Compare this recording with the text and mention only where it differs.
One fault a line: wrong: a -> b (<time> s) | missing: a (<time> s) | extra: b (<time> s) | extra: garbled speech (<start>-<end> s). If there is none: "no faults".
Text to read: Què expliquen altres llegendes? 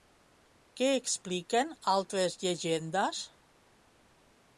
no faults